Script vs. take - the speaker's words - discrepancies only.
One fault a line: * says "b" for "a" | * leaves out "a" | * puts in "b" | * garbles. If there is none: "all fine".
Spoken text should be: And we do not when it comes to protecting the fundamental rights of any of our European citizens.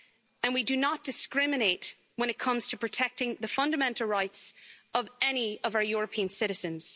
* puts in "discriminate"